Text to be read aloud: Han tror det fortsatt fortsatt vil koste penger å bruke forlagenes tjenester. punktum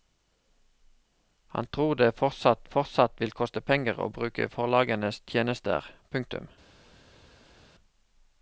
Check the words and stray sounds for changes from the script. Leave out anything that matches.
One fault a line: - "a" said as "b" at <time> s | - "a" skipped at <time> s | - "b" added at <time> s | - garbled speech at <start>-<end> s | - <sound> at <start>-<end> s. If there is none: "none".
none